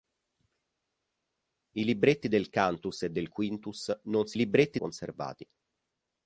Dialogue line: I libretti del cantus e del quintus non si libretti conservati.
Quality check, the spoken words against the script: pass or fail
pass